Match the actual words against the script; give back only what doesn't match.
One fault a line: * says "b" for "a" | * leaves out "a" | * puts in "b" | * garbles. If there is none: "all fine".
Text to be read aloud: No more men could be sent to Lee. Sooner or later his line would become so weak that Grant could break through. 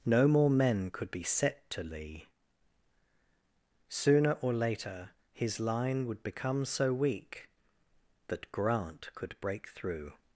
* says "set" for "sent"